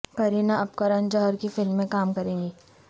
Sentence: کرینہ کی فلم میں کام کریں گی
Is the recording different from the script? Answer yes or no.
yes